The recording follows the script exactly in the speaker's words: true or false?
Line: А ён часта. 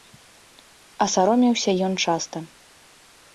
false